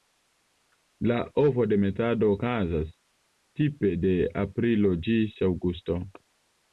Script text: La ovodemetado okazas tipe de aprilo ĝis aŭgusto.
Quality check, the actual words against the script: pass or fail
pass